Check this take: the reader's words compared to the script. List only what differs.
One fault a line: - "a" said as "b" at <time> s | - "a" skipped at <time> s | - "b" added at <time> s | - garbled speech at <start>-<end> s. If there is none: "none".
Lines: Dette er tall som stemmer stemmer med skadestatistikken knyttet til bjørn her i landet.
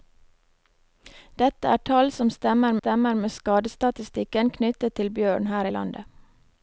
none